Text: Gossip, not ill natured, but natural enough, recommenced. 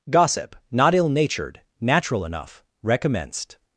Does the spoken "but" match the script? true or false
false